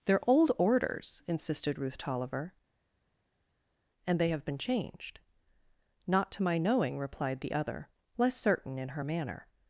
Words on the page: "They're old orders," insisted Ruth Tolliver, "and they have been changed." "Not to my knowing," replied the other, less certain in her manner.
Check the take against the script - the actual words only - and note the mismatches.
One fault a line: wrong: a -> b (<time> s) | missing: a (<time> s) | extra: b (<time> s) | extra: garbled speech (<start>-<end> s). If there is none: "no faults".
no faults